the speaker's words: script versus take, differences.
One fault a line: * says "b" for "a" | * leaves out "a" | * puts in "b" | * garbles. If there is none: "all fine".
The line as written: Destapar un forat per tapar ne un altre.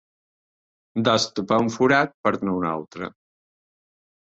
* leaves out "tapar"